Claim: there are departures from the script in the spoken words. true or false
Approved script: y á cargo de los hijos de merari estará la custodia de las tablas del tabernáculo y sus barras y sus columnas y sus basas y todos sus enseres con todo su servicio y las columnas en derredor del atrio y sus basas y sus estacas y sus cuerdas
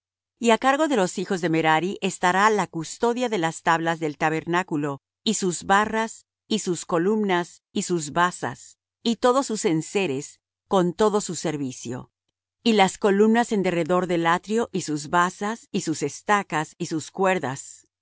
false